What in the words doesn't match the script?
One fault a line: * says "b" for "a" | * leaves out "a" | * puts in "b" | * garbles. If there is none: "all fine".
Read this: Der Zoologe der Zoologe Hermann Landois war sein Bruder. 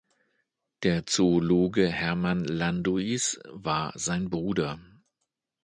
* leaves out "der Zoologe"